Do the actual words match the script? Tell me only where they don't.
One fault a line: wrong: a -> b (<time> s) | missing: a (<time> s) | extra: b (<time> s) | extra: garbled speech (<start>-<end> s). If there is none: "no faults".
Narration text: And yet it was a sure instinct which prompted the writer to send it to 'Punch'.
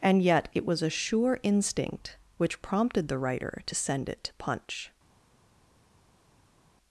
no faults